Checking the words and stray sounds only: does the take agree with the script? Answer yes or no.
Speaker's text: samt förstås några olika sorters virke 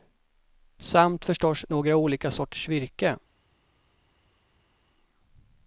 yes